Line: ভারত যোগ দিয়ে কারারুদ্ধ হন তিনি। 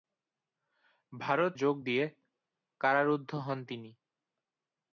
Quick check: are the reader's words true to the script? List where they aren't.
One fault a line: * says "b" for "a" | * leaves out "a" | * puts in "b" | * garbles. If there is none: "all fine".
all fine